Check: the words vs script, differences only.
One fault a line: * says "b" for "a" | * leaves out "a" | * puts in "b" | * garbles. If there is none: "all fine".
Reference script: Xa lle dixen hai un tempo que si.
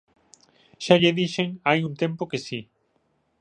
all fine